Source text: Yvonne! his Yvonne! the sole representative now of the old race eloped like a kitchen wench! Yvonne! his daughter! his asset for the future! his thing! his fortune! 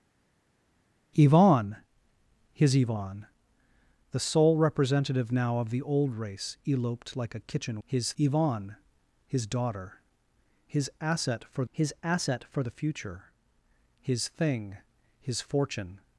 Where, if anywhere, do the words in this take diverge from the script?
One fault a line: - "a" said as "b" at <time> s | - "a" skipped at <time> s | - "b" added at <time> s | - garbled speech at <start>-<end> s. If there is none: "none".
- "wench" said as "his" at 7.9 s
- "his asset for" added at 11.7 s